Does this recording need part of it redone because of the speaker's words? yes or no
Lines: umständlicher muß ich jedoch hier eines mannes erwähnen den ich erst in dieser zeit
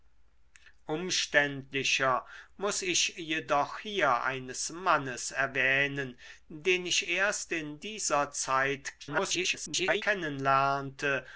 yes